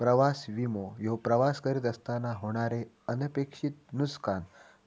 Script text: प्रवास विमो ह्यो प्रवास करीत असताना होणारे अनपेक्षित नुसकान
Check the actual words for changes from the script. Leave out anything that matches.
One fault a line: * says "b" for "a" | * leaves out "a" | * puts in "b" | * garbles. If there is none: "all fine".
all fine